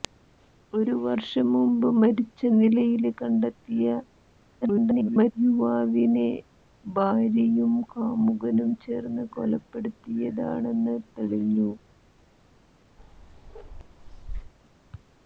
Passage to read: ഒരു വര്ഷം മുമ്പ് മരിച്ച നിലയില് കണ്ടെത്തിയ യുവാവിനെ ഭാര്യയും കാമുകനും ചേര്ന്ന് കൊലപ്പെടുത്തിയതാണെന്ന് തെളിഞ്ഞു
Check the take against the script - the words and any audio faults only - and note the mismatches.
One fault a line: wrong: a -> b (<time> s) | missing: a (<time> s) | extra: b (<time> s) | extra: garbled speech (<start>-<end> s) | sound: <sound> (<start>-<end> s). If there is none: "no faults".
extra: garbled speech (4.6-5.3 s)
sound: bark (13.0-14.5 s)